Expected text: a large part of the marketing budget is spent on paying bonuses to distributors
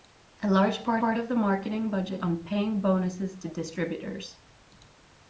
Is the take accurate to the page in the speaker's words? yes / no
no